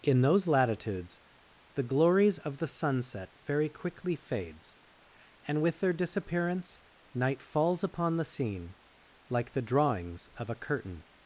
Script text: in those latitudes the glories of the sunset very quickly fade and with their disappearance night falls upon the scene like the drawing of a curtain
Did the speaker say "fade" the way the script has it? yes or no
no